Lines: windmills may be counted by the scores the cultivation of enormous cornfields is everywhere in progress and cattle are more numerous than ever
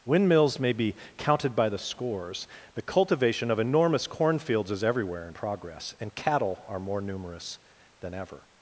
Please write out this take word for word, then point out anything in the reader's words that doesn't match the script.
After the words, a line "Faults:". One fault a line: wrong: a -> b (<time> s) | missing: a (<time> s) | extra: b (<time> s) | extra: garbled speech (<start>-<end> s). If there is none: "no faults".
windmills may be counted by the scores the cultivation of enormous cornfields is everywhere in progress and cattle are more numerous than ever
Faults:
no faults